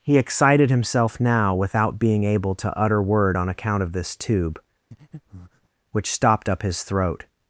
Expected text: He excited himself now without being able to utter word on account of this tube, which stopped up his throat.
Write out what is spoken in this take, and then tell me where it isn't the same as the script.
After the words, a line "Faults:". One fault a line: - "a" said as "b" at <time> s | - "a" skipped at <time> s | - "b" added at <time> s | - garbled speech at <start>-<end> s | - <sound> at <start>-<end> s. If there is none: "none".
He excited himself now without being able to utter word on account of this tube, which stopped up his throat.
Faults:
- breath at 4.9-5.7 s